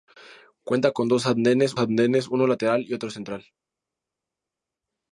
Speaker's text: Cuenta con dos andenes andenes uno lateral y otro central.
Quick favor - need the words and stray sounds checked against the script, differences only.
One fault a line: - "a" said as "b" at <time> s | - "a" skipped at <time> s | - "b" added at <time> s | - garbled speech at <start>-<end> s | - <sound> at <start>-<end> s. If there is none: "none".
none